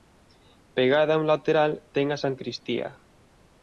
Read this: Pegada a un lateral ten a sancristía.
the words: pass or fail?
pass